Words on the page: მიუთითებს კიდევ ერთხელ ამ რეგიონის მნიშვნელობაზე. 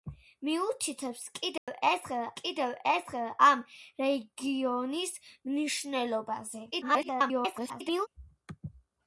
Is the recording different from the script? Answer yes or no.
yes